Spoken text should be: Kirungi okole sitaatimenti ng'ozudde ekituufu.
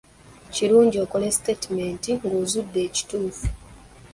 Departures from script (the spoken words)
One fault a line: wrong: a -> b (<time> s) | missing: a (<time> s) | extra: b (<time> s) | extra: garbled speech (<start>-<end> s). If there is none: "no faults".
no faults